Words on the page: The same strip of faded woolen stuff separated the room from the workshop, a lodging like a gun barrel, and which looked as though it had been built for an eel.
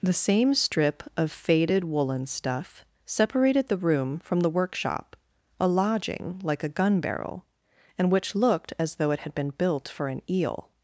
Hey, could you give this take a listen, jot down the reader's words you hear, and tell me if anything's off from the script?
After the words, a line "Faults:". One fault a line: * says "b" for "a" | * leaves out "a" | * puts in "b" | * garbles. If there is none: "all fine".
The same strip of faded woolen stuff separated the room from the workshop, a lodging like a gun barrel, and which looked as though it had been built for an eel.
Faults:
all fine